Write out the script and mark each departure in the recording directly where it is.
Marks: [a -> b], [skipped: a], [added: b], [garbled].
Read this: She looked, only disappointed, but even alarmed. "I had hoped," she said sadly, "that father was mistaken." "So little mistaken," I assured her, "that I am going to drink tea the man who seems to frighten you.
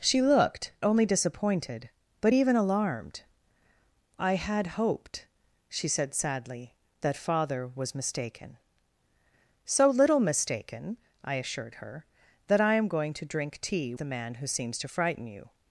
She looked, only disappointed, but even alarmed. "I had hoped," she said sadly, "that father was mistaken." "So little mistaken," I assured her, "that I am going to drink tea the man who seems to frighten you.